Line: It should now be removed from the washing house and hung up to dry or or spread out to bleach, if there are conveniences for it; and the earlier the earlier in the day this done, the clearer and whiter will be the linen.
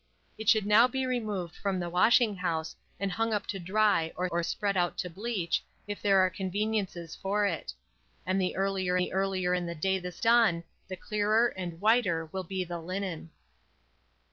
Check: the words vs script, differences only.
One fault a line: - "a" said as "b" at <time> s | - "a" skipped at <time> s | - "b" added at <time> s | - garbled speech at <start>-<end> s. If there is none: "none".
none